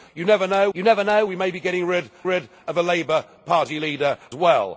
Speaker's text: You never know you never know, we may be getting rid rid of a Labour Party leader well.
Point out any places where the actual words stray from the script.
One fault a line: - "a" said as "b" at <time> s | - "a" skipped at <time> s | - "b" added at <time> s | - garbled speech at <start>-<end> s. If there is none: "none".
none